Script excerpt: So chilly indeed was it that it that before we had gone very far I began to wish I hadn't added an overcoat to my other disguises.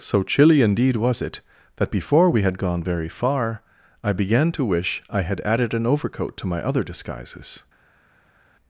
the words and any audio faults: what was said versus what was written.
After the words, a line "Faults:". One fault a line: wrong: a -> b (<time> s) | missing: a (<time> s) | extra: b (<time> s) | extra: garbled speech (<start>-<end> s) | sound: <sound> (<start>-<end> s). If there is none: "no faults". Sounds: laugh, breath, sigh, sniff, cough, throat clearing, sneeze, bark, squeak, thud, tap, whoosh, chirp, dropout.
So chilly indeed was it that before we had gone very far I began to wish I had added an overcoat to my other disguises.
Faults:
missing: it that (1.9 s)
wrong: hadn't -> had (5.2 s)